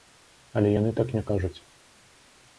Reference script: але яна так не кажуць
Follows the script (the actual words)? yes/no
no